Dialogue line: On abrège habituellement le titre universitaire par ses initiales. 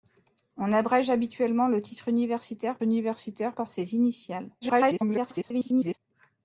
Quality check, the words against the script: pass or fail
fail